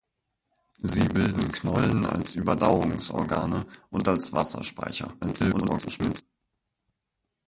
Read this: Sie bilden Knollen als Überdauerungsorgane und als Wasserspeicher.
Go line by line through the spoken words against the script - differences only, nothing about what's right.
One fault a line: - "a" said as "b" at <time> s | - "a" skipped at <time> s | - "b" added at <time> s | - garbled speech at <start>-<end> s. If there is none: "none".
- garbled speech at 5.2-6.2 s